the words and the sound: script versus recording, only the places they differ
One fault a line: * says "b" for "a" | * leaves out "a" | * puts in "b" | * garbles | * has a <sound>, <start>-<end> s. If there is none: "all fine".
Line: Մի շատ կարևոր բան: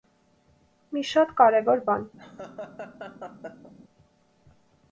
* has a laugh, 2.2-3.7 s